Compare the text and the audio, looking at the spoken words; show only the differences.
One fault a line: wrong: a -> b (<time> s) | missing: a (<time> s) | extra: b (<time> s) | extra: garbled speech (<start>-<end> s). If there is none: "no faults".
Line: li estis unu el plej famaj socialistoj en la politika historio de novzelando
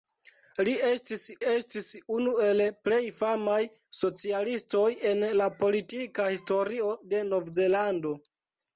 extra: estis (1.5 s)